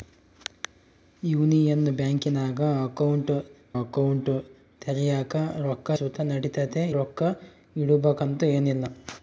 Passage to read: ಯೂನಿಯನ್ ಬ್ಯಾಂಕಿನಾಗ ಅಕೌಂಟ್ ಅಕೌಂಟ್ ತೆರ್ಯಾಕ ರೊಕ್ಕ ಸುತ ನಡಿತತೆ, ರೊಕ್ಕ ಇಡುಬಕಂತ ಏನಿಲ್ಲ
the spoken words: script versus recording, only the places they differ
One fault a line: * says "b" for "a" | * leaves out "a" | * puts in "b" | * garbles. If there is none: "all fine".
all fine